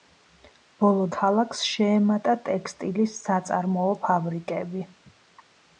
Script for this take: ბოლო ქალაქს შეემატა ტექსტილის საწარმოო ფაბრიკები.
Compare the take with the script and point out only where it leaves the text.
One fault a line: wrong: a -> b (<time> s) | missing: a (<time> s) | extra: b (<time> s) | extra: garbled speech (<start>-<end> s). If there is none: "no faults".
no faults